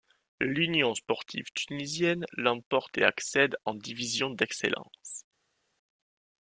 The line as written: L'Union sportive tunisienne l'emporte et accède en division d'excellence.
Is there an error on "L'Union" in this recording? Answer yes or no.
no